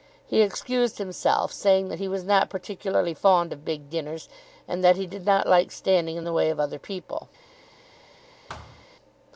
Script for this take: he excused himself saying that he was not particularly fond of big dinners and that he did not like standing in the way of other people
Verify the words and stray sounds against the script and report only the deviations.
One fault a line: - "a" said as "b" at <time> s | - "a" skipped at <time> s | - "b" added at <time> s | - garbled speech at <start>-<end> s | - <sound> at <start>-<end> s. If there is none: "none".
- thud at 8.5-8.9 s